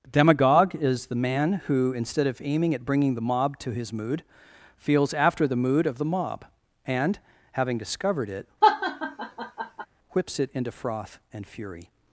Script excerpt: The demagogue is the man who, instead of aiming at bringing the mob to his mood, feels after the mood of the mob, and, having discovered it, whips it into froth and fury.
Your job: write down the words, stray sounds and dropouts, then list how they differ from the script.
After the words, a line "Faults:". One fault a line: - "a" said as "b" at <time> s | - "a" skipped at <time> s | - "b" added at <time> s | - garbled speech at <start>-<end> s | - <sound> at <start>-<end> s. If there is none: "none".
demagogue is the man who, instead of aiming at bringing the mob to his mood, feels after the mood of the mob, and, having discovered it, whips it into froth and fury.
Faults:
- "The" skipped at 0.1 s
- laugh at 8.6-9.9 s